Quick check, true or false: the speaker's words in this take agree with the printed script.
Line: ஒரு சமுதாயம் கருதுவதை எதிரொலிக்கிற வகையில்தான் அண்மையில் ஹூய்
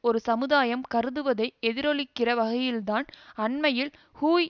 true